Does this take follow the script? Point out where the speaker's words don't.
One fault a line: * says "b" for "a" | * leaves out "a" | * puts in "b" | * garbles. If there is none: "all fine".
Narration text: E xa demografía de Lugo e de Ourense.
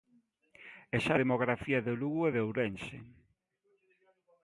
all fine